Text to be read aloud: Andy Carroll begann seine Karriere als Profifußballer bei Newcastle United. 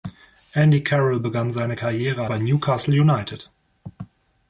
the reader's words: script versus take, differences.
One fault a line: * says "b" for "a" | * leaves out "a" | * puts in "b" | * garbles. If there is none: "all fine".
* leaves out "als Profifußballer"